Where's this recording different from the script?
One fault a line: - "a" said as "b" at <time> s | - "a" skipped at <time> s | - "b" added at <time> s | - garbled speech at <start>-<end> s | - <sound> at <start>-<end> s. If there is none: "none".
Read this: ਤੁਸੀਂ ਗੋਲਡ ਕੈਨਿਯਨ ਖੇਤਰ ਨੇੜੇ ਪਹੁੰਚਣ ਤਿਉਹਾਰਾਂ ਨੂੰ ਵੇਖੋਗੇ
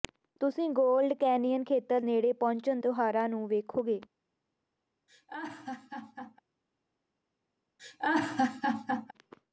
- laugh at 5.1-6.4 s
- laugh at 7.8-9.1 s